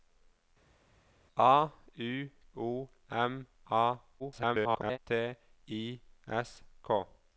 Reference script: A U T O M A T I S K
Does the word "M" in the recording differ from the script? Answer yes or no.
no